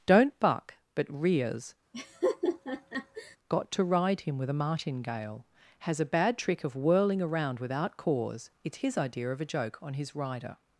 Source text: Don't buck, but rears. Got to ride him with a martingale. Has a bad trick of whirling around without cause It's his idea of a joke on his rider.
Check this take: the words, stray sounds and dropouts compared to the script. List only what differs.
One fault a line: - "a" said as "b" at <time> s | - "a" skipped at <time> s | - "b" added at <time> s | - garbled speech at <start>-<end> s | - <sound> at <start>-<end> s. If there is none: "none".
- laugh at 1.9-3.4 s